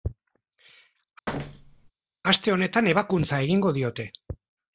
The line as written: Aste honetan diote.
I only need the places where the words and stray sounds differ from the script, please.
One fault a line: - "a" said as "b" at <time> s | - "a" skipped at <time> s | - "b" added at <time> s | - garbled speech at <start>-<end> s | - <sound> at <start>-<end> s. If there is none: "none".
- thud at 1.3-1.9 s
- "ebakuntza egingo" added at 3.0 s